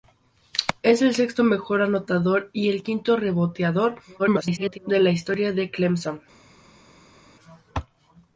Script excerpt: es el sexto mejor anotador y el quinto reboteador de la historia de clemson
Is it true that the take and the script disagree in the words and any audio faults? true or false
true